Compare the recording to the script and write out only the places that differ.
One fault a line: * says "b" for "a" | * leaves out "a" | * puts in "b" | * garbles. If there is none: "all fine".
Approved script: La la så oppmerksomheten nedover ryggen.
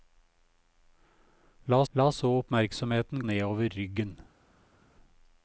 all fine